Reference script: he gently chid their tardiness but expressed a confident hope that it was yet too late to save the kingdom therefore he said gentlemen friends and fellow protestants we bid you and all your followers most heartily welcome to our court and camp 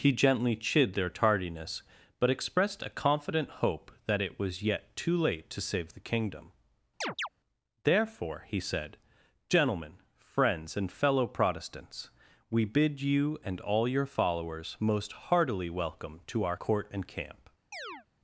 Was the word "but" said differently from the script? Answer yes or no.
no